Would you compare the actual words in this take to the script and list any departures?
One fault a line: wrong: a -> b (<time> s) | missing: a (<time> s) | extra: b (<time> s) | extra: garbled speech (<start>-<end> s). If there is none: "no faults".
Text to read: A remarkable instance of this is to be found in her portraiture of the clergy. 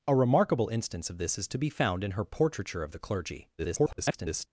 extra: garbled speech (3.6-4.5 s)